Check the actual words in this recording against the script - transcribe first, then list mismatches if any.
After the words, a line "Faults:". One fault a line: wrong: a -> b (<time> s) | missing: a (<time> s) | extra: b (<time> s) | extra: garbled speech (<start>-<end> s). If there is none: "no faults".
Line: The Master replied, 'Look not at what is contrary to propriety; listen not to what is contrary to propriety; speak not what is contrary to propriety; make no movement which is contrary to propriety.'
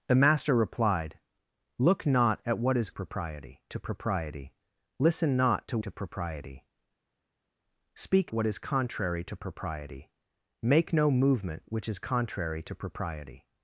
The Master replied, 'Look not at what is propriety to propriety; listen not to to propriety; speak what is contrary to propriety; make no movement which is contrary to propriety.'
Faults:
wrong: contrary -> propriety (2.9 s)
missing: what is contrary (5.8 s)
missing: not (8.3 s)